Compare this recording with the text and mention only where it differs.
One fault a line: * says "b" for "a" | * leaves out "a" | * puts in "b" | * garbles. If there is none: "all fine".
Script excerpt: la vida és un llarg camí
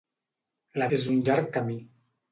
* leaves out "vida"